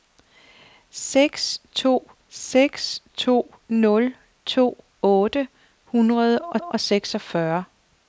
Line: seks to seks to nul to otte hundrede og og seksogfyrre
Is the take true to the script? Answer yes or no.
yes